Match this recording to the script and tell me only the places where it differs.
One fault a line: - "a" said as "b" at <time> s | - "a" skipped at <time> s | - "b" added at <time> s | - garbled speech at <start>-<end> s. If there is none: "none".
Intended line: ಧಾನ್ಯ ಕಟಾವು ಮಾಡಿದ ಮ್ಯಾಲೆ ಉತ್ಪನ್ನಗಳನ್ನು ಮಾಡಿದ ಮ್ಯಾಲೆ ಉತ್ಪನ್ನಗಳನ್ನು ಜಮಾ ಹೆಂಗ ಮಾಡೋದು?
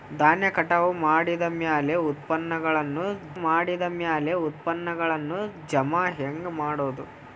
none